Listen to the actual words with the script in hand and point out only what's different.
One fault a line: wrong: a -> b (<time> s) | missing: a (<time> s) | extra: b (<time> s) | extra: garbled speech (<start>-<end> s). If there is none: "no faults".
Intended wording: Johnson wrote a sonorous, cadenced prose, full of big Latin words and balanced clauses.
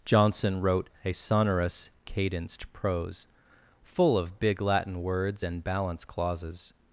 wrong: balanced -> balance (5.6 s)